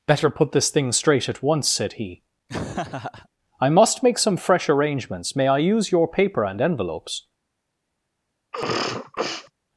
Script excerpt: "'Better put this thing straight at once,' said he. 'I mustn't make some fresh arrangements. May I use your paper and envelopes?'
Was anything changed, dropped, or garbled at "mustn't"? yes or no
yes